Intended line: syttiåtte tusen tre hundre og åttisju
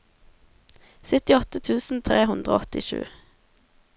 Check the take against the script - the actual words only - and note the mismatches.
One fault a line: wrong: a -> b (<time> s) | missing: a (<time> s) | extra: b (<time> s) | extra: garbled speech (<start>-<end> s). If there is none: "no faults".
no faults